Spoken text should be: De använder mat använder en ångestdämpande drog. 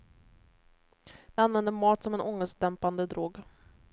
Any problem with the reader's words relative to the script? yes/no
yes